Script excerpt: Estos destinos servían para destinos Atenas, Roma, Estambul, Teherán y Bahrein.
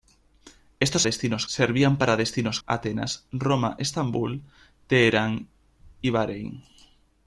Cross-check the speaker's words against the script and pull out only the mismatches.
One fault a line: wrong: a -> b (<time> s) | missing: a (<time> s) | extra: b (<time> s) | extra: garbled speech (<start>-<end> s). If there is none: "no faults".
no faults